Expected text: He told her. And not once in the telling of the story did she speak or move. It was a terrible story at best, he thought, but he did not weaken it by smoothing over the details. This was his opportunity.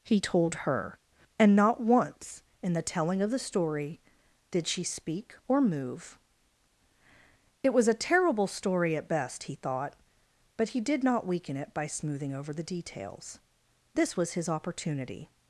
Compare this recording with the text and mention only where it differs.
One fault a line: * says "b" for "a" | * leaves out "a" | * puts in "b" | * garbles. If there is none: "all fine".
all fine